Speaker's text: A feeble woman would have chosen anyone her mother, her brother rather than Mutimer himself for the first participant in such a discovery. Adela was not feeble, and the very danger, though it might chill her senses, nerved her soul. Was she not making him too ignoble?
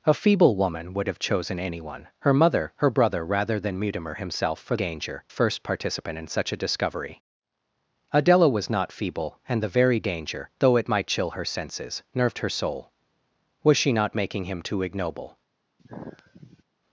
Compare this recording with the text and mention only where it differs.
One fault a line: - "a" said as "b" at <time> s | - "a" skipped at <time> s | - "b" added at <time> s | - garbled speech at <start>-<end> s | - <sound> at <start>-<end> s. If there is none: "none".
- "the" said as "danger" at 4.7 s
- sigh at 15.8-16.6 s